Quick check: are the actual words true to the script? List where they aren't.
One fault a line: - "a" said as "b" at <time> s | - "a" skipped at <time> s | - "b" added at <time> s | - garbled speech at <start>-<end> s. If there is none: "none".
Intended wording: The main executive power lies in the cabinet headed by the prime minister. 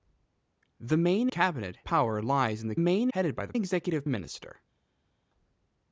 - "executive" said as "cabinet" at 1.3 s
- "cabinet" said as "main" at 2.8 s
- "prime" said as "executive" at 3.5 s